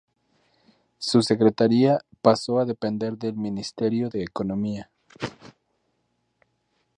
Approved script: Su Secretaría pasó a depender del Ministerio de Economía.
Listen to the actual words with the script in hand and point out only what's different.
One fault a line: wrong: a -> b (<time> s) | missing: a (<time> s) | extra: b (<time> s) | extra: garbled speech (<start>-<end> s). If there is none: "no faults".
no faults